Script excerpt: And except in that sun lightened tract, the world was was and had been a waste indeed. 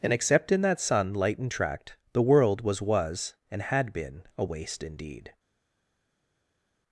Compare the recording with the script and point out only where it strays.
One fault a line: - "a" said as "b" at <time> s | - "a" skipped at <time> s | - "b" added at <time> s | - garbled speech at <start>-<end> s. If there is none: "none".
none